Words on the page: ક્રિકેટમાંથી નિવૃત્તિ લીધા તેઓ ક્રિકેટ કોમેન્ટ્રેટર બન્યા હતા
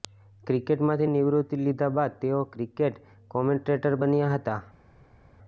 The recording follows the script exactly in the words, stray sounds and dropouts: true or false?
false